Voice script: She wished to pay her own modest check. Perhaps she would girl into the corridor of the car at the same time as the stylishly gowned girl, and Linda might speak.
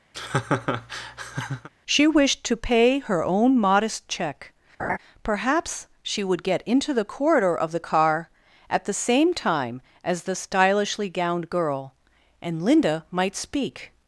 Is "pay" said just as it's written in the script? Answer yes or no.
yes